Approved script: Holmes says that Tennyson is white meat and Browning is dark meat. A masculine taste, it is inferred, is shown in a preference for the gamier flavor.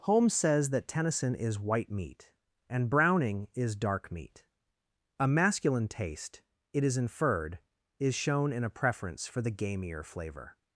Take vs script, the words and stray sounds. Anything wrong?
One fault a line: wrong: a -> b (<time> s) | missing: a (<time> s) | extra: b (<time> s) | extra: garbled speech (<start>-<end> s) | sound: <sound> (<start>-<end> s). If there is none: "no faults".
no faults